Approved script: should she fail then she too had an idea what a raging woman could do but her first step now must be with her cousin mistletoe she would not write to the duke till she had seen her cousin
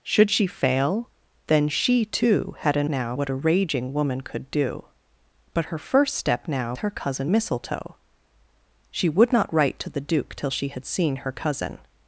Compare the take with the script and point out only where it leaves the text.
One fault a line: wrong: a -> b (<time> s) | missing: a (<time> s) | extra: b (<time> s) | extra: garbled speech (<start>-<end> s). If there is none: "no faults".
wrong: idea -> now (2.9 s)
missing: must be with (6.7 s)